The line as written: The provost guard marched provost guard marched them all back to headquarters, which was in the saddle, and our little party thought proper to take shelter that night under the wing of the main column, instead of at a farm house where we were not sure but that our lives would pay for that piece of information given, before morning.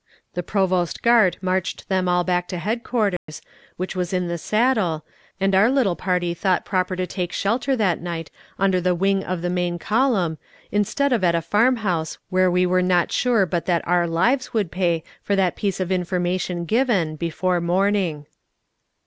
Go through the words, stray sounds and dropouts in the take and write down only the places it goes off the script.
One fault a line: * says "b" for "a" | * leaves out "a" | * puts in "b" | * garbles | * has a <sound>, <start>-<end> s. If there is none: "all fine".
* leaves out "provost guard marched"
* has a dropout, 3.2-3.3 s